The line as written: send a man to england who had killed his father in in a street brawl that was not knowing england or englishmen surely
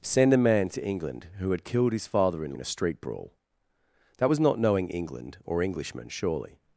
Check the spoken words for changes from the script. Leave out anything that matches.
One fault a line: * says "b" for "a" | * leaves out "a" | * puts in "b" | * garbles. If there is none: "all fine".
all fine